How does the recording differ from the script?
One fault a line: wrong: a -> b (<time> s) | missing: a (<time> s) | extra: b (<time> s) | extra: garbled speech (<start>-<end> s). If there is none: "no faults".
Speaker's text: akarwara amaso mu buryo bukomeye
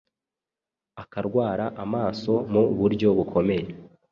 no faults